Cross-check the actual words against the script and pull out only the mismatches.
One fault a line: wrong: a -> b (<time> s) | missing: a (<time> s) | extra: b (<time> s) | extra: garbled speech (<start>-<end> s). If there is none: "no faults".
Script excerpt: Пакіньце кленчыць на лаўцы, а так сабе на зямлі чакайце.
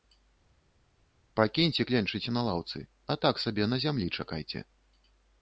no faults